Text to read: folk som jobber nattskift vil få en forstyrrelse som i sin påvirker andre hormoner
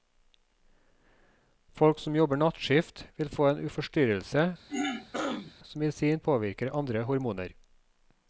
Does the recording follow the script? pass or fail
pass